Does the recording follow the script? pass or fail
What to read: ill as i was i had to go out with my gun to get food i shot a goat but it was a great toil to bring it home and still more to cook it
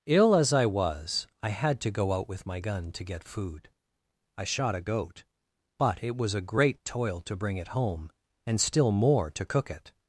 pass